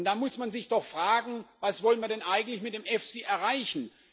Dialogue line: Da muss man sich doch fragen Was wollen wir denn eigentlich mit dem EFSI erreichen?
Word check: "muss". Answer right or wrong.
right